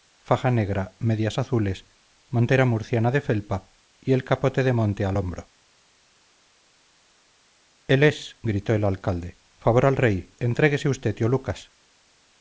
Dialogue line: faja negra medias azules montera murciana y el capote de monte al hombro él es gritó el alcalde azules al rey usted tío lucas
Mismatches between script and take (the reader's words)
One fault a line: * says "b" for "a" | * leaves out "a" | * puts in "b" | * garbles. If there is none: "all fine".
* puts in "de felpa"
* says "favor" for "azules"
* puts in "entréguese"